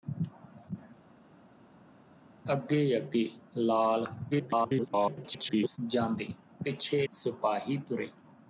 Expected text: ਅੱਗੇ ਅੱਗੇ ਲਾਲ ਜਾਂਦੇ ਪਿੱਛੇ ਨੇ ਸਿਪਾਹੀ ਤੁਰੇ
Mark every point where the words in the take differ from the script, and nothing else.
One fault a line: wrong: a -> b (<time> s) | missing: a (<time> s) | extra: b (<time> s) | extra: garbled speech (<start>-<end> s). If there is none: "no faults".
extra: garbled speech (4.3-5.8 s)
missing: ਨੇ (7.1 s)